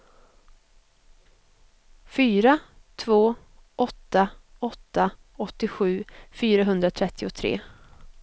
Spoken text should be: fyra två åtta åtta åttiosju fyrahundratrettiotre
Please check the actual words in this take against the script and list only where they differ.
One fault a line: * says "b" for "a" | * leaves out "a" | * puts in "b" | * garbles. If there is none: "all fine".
all fine